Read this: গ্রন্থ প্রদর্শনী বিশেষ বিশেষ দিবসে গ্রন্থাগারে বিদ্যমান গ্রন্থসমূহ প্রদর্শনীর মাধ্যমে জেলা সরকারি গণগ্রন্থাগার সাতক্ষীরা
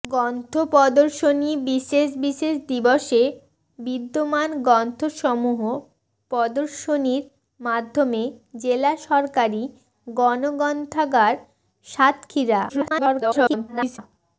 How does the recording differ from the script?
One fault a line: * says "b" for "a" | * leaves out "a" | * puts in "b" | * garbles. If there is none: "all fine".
* leaves out "গ্রন্থাগারে"
* garbles